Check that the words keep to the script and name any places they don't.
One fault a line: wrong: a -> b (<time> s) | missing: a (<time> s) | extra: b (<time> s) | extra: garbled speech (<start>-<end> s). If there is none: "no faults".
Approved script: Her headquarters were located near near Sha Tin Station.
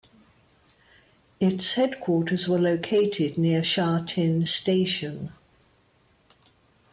wrong: Her -> Its (1.4 s)
missing: near (3.6 s)